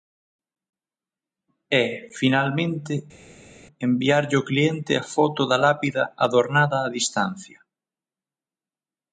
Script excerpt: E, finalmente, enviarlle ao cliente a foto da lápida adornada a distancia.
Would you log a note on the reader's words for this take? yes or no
no